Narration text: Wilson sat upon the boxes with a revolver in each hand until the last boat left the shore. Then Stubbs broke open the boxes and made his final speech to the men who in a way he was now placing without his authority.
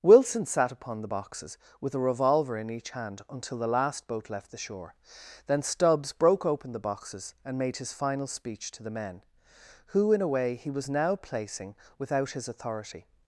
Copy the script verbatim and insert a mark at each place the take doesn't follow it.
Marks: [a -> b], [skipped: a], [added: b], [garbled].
Wilson sat upon the boxes with a revolver in each hand until the last boat left the shore. Then Stubbs broke open the boxes and made his final speech to the men who in a way he was now placing without his authority.